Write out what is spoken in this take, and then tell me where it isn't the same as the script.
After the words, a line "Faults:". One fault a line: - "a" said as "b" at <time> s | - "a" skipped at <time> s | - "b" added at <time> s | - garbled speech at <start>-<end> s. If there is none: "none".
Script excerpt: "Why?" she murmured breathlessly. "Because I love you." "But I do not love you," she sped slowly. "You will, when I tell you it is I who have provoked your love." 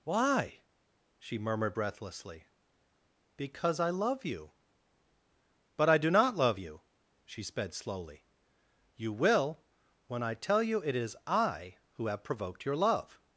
"Why?" she murmured breathlessly. "Because I love you." "But I do not love you," she sped slowly. "You will, when I tell you it is I who have provoked your love."
Faults:
none